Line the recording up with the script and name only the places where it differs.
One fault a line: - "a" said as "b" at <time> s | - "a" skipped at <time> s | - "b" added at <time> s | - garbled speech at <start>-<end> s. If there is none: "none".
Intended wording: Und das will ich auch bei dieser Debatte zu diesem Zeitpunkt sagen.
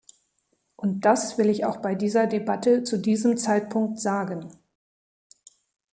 none